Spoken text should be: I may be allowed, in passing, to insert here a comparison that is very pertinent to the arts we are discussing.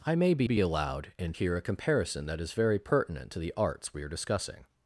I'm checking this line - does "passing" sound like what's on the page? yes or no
no